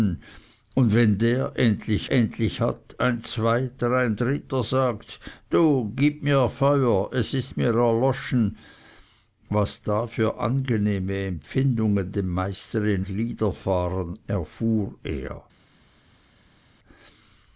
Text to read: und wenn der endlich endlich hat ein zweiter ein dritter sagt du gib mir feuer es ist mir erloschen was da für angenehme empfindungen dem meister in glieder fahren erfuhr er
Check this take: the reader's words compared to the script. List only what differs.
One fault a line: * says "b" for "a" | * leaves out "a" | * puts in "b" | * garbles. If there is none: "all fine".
all fine